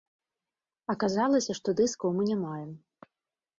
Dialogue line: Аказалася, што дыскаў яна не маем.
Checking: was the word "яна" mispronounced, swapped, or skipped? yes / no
yes